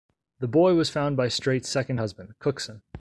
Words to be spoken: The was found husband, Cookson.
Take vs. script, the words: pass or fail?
fail